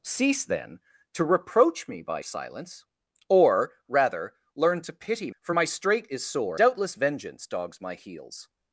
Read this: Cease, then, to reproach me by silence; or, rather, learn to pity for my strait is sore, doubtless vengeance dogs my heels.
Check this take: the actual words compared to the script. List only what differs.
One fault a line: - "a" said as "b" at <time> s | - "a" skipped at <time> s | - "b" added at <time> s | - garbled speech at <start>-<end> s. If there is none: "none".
none